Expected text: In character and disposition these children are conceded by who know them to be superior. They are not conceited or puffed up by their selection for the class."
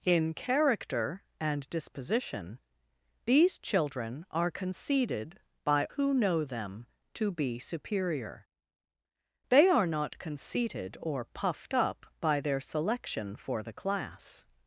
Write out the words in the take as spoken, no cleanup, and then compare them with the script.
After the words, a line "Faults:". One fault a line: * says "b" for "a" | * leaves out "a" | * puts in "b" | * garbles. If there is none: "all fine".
In character and disposition these children are conceded by who know them to be superior. They are not conceited or puffed up by their selection for the class."
Faults:
all fine